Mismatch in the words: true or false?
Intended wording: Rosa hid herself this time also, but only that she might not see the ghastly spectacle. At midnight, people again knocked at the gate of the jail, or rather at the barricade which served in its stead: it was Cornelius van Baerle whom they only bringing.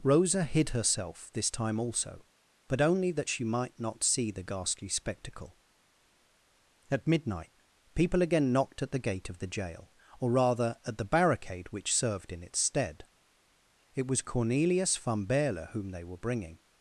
true